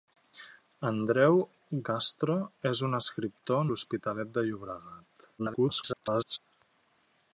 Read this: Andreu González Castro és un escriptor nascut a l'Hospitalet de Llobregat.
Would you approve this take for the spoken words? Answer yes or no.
no